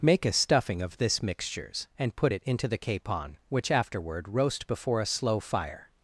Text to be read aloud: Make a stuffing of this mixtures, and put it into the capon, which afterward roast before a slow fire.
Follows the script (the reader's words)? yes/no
yes